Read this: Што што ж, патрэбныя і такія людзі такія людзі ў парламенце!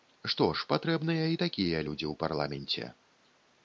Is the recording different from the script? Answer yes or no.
yes